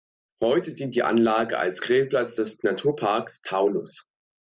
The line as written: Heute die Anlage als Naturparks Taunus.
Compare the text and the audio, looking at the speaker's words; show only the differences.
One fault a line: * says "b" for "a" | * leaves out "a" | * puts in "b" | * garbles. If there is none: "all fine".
* puts in "dient"
* puts in "Grillplatz des"